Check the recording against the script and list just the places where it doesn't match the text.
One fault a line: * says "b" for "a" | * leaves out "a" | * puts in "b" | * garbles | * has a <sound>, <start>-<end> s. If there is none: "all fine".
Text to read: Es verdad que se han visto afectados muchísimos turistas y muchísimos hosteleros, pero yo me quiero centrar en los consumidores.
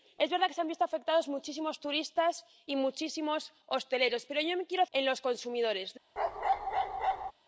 * leaves out "centrar"
* has a bark, 6.2-7.3 s